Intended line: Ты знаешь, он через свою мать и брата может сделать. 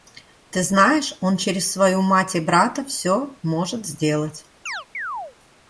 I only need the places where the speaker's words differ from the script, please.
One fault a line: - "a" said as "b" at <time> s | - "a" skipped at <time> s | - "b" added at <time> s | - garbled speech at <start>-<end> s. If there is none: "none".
- "всё" added at 2.9 s